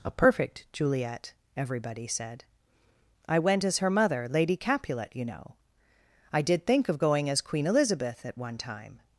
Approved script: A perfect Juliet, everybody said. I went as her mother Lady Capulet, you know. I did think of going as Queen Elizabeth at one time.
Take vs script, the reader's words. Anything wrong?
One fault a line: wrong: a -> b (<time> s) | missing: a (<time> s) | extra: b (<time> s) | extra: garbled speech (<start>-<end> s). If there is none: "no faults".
no faults